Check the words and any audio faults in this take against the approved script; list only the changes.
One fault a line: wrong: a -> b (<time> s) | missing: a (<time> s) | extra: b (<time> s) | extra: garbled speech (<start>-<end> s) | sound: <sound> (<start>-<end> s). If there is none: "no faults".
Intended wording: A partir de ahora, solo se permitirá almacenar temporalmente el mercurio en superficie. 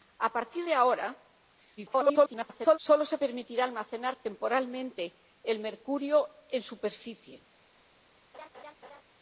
extra: garbled speech (1.8-2.8 s)
sound: laugh (8.3-9.0 s)